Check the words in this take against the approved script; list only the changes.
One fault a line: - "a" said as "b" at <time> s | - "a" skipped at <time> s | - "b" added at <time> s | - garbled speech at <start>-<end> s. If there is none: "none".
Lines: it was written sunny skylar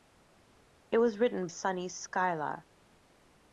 none